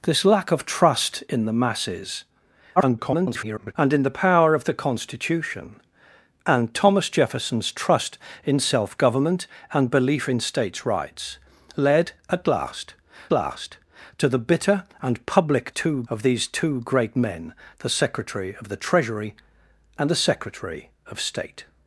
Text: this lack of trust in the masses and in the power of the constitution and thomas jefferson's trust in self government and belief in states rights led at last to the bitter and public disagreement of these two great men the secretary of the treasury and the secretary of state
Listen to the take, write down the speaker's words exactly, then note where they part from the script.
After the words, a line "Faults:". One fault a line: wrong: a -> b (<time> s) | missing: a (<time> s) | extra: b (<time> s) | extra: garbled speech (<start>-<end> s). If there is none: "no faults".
this lack of trust in the masses [garbled] and in the power of the constitution and thomas jefferson's trust in self government and belief in states rights led at last last to the bitter and public two of these two great men the secretary of the treasury and the secretary of state
Faults:
extra: garbled speech (2.8-3.7 s)
extra: last (13.3 s)
wrong: disagreement -> two (15.7 s)